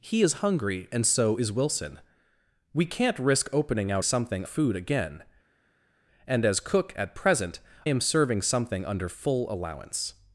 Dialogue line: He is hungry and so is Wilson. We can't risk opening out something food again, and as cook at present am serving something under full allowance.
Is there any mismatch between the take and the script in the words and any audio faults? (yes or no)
no